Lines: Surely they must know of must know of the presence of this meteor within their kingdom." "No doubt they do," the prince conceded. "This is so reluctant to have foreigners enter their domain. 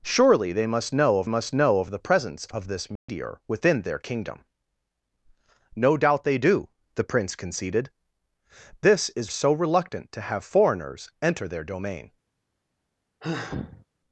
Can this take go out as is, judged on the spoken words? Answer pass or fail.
pass